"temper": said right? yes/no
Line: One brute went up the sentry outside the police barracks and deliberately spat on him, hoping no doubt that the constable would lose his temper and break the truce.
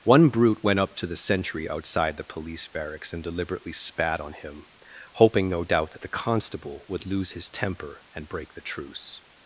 yes